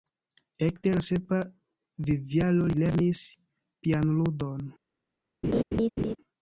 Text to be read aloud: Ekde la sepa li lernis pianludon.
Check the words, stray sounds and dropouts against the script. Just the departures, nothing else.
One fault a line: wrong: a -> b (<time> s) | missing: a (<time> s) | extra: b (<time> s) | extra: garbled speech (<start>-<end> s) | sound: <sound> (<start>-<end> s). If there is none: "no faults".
extra: vivjaro (2.1 s)
sound: laugh (5.4-6.2 s)